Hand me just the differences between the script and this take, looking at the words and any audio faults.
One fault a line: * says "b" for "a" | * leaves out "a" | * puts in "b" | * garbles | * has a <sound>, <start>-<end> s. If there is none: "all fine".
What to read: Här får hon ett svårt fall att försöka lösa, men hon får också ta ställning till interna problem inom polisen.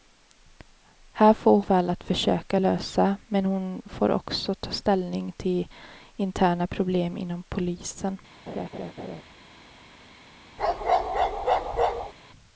* leaves out "hon ett svårt"
* has a laugh, 8.5-9.2 s
* has a bark, 10.6-12.1 s